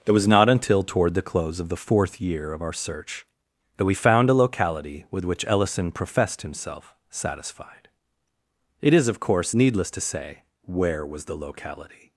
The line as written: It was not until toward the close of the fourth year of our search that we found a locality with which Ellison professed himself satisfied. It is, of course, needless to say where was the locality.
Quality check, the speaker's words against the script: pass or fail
pass